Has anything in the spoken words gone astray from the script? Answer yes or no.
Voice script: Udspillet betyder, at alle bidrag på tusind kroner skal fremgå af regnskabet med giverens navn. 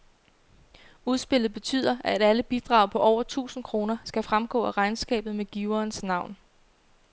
yes